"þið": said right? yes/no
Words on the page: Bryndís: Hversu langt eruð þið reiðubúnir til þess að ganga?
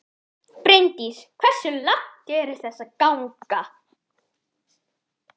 no